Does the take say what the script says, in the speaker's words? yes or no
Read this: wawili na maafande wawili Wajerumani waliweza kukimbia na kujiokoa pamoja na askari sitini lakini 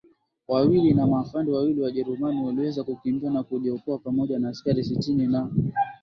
no